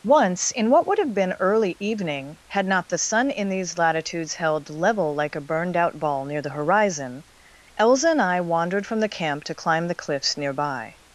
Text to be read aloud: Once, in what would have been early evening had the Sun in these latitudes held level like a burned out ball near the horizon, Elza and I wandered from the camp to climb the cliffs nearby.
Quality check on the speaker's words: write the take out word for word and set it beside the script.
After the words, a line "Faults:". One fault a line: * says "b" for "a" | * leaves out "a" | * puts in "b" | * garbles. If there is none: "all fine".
Once, in what would have been early evening had not the Sun in these latitudes held level like a burned out ball near the horizon, Elza and I wandered from the camp to climb the cliffs nearby.
Faults:
* puts in "not"